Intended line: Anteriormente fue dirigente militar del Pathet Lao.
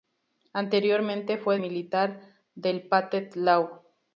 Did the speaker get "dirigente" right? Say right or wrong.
wrong